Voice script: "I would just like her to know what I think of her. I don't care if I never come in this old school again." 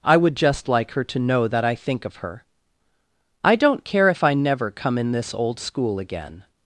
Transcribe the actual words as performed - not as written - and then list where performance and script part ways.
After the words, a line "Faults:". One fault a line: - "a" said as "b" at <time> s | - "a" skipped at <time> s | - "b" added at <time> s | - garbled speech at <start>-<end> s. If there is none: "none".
"I would just like her to know that I think of her. I don't care if I never come in this old school again."
Faults:
- "what" said as "that" at 1.5 s